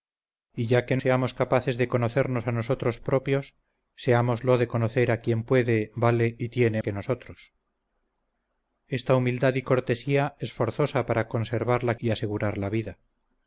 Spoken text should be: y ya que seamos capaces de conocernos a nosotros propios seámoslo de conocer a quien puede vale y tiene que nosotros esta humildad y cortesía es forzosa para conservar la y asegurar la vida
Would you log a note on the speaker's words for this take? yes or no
no